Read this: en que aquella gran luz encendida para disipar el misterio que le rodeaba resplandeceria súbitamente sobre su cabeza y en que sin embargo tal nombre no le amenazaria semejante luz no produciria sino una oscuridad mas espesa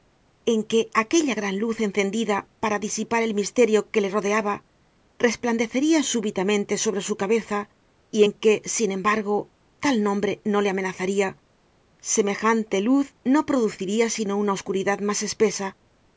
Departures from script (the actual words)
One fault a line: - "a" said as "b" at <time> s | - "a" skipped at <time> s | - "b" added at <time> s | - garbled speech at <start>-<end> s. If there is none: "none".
none